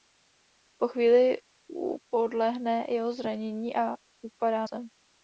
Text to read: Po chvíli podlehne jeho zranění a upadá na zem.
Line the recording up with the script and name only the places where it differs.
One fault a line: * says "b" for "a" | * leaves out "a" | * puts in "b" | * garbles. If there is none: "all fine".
* leaves out "na"